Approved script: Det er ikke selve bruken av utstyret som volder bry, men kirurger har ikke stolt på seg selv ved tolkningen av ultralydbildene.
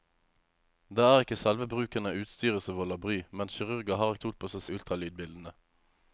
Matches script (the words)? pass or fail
fail